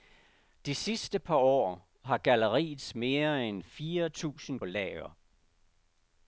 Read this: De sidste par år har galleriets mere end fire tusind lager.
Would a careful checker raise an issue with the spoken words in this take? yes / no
no